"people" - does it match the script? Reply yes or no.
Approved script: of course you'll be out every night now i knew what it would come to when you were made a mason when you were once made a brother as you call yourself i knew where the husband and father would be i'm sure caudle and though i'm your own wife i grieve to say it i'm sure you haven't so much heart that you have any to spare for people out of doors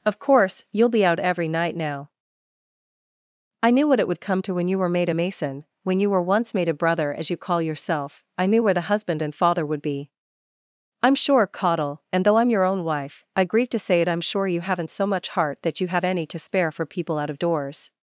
yes